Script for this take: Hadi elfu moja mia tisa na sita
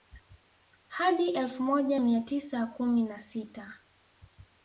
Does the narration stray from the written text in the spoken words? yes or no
yes